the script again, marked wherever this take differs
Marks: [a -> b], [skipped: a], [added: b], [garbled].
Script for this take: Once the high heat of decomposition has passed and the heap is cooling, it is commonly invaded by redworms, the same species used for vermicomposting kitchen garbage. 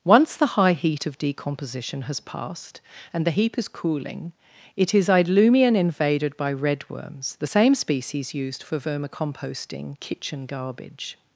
Once the high heat of decomposition has passed and the heap is cooling, it is [commonly -> idlumian] invaded by redworms, the same species used for vermicomposting kitchen garbage.